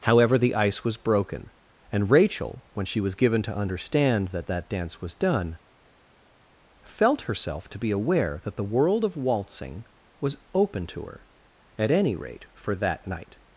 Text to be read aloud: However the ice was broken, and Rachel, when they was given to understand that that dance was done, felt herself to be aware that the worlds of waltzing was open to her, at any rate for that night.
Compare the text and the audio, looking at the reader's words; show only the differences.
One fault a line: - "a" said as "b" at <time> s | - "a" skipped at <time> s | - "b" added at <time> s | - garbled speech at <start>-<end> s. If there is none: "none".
- "they" said as "she" at 2.9 s
- "worlds" said as "world" at 8.6 s